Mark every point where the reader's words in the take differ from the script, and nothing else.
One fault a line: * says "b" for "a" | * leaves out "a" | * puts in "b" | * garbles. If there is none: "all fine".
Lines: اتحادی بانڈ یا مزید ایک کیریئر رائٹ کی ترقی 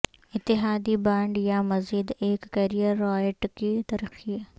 all fine